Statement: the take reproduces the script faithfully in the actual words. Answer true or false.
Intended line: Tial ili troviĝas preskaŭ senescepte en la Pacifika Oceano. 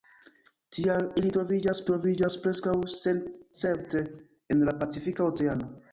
false